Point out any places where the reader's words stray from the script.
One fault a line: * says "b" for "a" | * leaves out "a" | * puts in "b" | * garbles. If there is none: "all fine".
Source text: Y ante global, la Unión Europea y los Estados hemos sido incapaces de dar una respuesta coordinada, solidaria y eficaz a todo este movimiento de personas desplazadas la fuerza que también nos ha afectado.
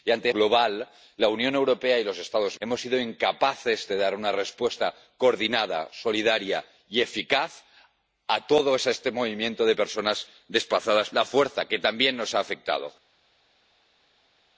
all fine